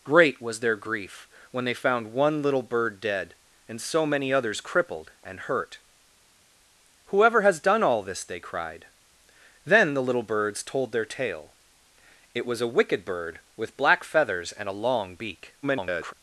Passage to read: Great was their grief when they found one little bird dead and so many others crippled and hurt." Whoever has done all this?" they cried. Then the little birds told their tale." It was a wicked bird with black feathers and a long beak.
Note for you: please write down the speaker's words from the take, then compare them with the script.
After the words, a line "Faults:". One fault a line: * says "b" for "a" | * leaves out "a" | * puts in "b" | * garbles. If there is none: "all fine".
Great was their grief when they found one little bird dead and so many others crippled and hurt." Whoever has done all this?" they cried. Then the little birds told their tale." It was a wicked bird with black feathers and a long beak. [garbled]
Faults:
* garbles